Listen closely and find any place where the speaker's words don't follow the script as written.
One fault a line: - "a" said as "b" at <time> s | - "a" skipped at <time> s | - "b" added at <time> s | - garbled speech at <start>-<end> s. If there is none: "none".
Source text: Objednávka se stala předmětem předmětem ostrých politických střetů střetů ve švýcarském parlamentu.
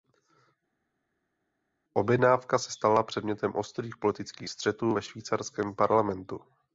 - "předmětem" skipped at 3.5 s
- "střetů" skipped at 5.0 s